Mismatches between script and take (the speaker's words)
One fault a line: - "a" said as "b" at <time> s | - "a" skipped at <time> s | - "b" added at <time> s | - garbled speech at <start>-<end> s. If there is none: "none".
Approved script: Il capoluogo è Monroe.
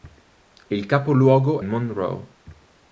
- "è" skipped at 1.6 s